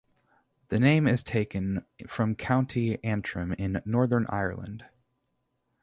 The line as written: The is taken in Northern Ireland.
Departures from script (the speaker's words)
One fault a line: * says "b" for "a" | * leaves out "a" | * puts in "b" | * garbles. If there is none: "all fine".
* puts in "name"
* puts in "from County Antrim"